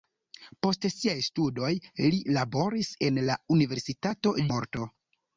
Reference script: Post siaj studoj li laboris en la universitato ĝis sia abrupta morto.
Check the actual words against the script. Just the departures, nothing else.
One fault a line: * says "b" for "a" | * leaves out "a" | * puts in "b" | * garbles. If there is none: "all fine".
* leaves out "ĝis sia abrupta"